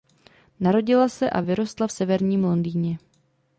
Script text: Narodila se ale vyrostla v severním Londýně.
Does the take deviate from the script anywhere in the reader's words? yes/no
yes